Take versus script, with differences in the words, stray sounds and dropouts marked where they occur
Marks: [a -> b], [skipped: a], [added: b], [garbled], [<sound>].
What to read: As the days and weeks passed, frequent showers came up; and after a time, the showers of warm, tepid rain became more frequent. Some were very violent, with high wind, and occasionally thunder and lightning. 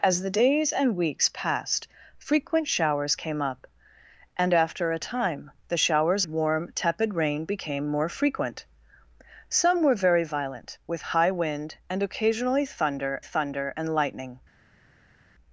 As the days and weeks passed, frequent showers came up; and after a time, the showers [skipped: of] warm, tepid rain became more frequent. Some were very violent, with high wind, and occasionally thunder [added: thunder] and lightning.